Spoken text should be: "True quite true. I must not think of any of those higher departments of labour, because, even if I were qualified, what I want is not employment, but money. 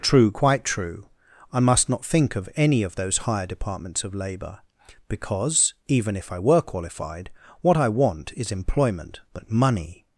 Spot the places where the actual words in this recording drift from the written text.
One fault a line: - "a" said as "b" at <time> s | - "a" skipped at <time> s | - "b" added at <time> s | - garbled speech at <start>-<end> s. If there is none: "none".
- "not" skipped at 8.5 s